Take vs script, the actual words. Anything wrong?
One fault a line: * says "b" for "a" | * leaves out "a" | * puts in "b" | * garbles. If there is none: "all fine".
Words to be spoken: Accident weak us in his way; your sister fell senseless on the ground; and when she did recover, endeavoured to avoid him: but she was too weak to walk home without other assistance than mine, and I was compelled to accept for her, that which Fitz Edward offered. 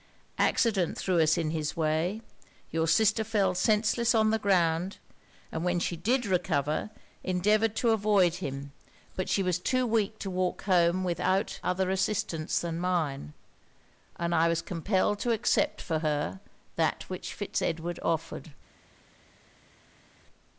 * says "threw" for "weak"